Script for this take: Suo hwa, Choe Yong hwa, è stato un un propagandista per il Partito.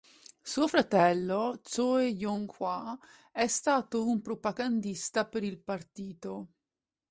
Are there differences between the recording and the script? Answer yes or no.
yes